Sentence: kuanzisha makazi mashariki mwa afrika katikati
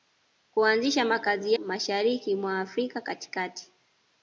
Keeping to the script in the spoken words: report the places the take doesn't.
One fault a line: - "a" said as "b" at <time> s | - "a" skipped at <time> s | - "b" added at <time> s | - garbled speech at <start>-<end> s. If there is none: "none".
none